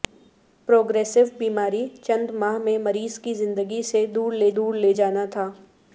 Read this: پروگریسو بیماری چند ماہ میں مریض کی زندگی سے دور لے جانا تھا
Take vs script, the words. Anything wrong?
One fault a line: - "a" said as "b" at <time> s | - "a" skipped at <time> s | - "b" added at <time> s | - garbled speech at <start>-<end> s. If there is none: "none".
- "دور لے" added at 4.6 s